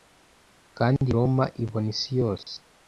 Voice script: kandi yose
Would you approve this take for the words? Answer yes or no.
no